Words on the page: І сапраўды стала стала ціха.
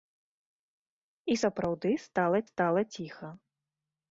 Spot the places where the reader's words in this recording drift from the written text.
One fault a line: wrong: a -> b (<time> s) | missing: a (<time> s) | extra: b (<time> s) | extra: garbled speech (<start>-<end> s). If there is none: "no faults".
no faults